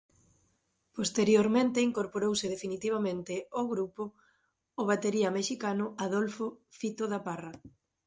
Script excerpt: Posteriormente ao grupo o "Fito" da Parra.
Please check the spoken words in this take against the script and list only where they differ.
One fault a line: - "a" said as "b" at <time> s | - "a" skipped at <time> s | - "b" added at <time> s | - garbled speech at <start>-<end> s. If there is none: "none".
- "incorporouse definitivamente" added at 1.9 s
- "batería mexicano Adolfo" added at 4.9 s